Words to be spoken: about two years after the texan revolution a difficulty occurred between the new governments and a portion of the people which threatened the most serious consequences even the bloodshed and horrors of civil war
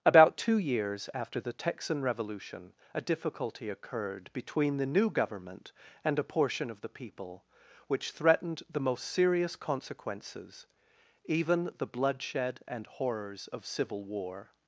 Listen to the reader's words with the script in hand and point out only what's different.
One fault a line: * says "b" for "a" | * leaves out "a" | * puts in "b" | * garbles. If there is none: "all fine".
* says "government" for "governments"